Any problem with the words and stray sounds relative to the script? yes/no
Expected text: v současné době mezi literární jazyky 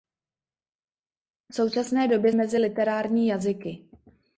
no